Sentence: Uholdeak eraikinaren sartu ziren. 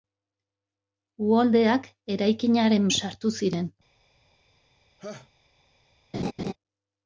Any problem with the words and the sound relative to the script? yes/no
yes